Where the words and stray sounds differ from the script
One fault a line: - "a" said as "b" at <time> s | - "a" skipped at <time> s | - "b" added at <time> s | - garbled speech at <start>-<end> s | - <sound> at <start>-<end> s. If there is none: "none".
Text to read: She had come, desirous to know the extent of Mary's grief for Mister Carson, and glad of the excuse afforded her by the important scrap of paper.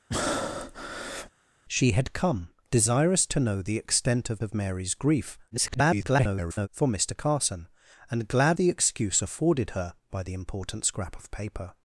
- breath at 0.1-1.3 s
- "of" added at 4.4 s
- garbled speech at 5.5-6.7 s
- "of" skipped at 8.6 s